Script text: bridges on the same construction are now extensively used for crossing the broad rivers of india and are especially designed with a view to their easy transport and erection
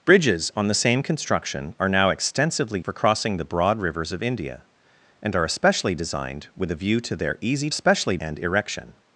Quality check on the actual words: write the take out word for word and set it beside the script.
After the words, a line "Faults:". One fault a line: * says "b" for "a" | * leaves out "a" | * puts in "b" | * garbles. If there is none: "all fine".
bridges on the same construction are now extensively for crossing the broad rivers of india and are especially designed with a view to their easy especially and erection
Faults:
* leaves out "used"
* says "especially" for "transport"